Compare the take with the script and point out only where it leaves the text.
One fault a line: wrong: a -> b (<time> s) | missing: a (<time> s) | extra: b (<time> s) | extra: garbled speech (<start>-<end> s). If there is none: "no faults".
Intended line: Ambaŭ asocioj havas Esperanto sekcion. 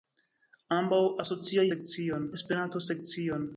wrong: havas -> sekcion (1.7 s)